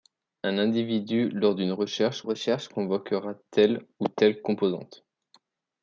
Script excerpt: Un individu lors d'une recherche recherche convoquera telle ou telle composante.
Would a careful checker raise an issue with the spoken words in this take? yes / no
no